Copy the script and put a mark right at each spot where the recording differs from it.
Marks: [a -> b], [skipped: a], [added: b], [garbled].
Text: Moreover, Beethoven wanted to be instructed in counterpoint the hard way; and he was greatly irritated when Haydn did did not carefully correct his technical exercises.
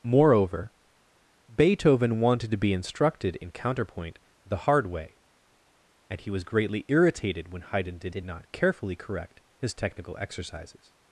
Moreover, Beethoven wanted to be instructed in counterpoint the hard way; and he was greatly irritated when Haydn did did not carefully correct his technical exercises.